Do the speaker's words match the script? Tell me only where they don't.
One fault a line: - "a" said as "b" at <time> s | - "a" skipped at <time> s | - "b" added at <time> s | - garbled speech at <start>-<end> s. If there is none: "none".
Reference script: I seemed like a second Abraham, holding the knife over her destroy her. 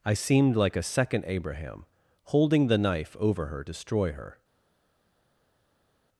none